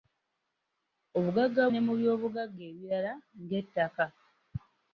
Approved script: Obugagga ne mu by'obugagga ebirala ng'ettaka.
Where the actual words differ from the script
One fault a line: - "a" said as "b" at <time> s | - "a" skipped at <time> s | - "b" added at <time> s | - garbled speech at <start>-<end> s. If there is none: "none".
none